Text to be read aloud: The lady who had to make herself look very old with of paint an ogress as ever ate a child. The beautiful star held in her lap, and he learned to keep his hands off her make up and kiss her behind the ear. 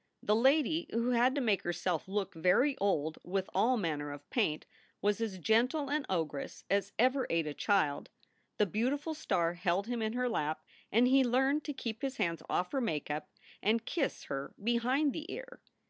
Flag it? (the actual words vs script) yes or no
yes